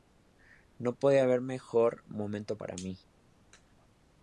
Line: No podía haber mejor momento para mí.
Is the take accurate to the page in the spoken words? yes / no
yes